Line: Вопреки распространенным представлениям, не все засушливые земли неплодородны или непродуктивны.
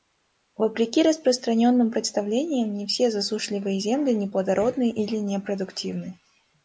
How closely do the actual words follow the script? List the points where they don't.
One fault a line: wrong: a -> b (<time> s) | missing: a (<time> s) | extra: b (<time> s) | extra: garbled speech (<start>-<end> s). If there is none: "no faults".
no faults